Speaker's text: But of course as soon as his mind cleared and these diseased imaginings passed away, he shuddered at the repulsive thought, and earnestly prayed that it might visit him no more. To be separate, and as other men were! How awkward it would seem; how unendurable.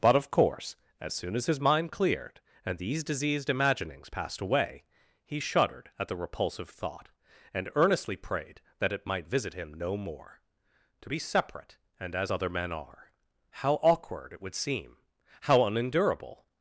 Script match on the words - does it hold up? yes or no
no